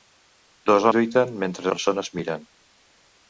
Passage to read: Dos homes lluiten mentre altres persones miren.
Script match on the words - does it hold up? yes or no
no